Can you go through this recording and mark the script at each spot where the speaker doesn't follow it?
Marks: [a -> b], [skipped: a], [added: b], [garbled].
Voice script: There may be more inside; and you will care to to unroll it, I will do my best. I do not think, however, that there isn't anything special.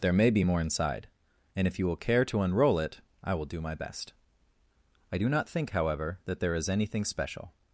There may be more inside; and [added: if] you will care to [skipped: to] unroll it, I will do my best. I do not think, however, that there [isn't -> is] anything special.